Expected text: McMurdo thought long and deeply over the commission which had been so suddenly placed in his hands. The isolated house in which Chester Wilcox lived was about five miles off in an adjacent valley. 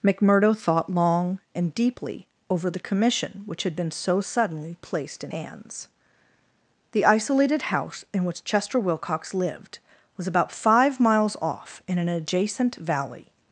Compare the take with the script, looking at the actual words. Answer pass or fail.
fail